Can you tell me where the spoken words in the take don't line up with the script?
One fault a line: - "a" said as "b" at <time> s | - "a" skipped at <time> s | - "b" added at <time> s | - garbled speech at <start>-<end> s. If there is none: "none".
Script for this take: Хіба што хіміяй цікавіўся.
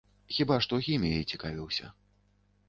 none